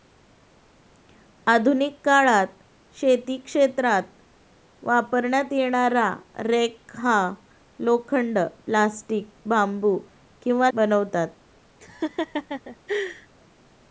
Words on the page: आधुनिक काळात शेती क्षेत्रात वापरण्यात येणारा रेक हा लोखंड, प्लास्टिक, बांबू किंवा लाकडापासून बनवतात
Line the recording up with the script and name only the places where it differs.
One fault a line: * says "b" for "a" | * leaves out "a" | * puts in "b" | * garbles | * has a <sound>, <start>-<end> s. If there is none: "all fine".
* leaves out "लाकडापासून"
* has a laugh, 11.8-13.3 s